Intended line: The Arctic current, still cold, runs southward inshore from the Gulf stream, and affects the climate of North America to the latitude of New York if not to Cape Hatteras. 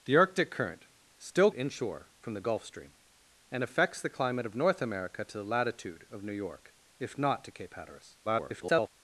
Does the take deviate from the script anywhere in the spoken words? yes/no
yes